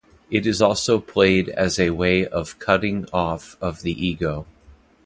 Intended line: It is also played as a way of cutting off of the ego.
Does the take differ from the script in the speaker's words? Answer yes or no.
no